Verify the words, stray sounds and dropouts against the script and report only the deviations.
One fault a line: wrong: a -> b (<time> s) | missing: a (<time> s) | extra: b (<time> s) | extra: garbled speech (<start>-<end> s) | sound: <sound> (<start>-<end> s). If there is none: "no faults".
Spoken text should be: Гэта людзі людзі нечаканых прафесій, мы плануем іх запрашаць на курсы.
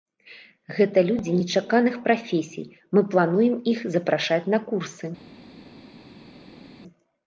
missing: людзі (1.4 s)